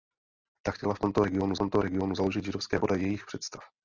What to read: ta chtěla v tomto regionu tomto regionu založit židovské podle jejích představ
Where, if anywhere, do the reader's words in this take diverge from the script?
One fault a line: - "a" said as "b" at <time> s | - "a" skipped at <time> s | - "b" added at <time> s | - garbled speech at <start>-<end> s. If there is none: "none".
none